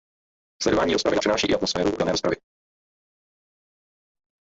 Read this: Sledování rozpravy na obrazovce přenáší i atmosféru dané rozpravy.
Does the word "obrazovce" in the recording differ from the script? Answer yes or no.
yes